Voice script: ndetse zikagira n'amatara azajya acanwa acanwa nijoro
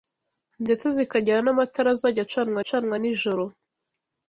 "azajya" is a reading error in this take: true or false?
false